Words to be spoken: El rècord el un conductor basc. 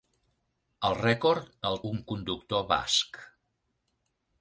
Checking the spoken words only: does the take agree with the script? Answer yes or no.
yes